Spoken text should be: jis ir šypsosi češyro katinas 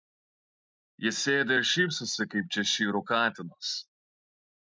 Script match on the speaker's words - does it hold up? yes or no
no